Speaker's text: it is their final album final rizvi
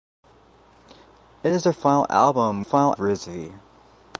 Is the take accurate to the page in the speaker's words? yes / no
yes